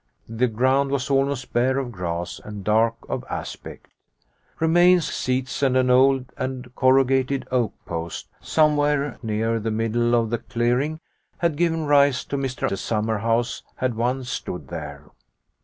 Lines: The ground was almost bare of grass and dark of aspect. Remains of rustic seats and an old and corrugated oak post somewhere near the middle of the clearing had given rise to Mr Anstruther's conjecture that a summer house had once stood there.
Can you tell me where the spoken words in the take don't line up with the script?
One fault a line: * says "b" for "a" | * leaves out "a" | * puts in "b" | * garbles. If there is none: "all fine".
* leaves out "of rustic"
* leaves out "Anstruther's conjecture that"